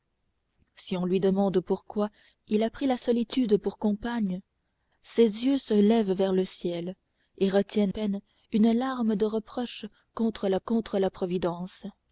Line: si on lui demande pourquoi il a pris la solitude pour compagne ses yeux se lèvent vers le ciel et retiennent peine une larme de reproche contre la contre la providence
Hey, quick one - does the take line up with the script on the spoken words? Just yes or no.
yes